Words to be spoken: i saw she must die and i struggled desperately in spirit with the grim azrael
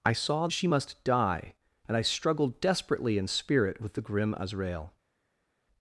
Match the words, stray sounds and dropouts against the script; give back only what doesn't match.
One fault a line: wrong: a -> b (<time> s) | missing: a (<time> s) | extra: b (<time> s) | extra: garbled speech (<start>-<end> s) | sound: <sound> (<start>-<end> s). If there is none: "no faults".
no faults